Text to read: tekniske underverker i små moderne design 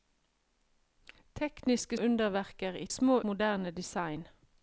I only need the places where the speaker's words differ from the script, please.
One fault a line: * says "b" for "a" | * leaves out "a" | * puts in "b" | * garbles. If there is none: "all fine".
all fine